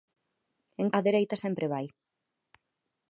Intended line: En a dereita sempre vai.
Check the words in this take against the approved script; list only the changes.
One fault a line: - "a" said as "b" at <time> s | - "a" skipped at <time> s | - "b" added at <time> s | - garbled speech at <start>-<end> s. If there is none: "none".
none